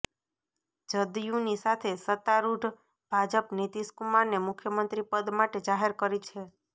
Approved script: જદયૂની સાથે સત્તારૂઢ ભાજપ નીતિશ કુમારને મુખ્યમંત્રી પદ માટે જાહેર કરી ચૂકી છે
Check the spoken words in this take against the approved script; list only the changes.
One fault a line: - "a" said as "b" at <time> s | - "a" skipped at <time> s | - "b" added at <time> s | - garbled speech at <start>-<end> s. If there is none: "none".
- "ચૂકી" skipped at 6.2 s